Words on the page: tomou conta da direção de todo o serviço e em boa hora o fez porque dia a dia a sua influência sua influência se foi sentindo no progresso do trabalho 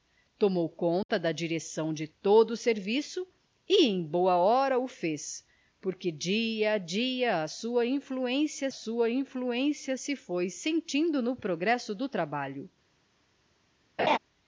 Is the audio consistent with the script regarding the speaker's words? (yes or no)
yes